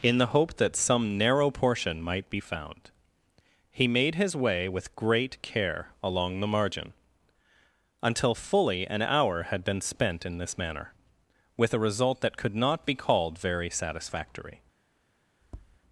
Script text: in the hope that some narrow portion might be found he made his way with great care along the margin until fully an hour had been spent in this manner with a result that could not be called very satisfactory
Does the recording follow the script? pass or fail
pass